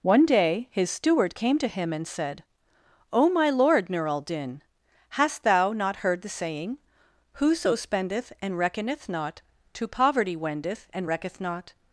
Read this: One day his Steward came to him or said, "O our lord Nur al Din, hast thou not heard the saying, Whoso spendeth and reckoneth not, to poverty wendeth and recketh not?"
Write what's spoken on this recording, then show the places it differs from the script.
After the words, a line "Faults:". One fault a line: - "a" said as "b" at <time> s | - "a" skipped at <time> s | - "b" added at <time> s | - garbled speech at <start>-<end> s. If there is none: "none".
One day his Steward came to him and said, "O my lord Nur al Din, hast thou not heard the saying, Whoso spendeth and reckoneth not, to poverty wendeth and recketh not?"
Faults:
- "or" said as "and" at 1.9 s
- "our" said as "my" at 3.3 s